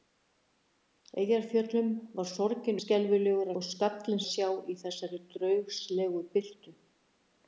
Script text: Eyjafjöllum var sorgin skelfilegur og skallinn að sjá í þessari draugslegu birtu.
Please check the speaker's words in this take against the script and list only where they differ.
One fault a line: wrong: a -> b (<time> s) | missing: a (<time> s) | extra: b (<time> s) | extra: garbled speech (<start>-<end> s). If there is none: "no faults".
no faults